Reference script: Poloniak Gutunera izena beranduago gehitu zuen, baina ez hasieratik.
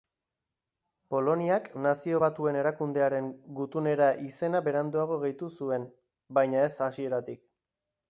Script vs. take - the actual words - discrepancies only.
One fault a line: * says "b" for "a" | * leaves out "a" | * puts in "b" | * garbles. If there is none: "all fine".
* puts in "Nazio Batuen Erakundearen"